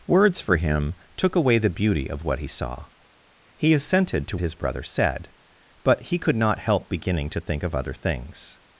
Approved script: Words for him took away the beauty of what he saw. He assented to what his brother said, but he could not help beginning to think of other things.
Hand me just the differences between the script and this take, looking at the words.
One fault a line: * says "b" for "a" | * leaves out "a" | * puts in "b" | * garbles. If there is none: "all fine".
* leaves out "what"